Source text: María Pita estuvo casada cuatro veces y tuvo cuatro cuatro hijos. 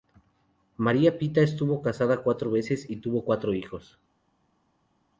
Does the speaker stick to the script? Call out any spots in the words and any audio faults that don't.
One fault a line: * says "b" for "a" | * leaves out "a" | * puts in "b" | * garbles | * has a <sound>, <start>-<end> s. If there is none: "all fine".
* leaves out "cuatro"